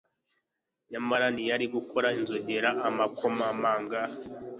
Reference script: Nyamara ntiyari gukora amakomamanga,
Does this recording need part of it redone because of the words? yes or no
yes